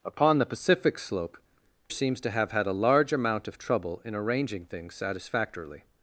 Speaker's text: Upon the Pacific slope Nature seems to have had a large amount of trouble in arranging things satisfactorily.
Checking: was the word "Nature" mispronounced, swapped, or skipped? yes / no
yes